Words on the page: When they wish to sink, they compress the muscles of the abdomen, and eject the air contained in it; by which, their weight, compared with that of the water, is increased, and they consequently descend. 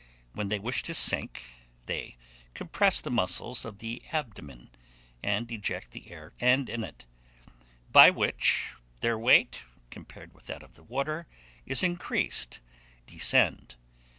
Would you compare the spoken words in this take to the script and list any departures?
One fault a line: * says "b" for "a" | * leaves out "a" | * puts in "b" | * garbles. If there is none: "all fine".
* says "and" for "contained"
* leaves out "and they consequently"